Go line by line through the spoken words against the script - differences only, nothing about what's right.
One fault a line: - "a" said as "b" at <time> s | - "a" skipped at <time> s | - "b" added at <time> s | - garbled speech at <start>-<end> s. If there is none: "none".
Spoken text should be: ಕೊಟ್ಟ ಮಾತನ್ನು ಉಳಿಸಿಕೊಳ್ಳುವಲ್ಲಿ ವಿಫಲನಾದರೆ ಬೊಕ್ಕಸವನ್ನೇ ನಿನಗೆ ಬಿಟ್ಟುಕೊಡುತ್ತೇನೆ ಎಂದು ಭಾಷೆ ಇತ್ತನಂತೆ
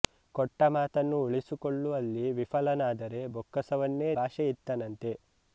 - "ನಿನಗೆ ಬಿಟ್ಟುಕೊಡುತ್ತೇನೆ ಎಂದು" skipped at 4.1 s